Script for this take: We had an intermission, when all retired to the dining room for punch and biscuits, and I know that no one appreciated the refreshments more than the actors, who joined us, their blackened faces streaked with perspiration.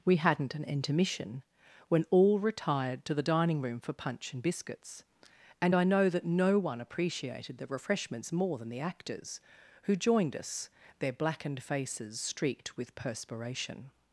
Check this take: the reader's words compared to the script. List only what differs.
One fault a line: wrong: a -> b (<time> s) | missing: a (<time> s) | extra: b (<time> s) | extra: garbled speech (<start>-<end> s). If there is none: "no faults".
wrong: had -> hadn't (0.2 s)